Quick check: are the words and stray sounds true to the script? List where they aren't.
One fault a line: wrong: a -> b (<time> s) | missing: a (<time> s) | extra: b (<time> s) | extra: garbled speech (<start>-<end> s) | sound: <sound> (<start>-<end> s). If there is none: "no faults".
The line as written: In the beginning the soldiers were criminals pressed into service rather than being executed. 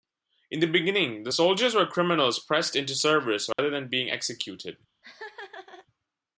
sound: dropout (3.5-3.6 s)
sound: laugh (5.0-5.9 s)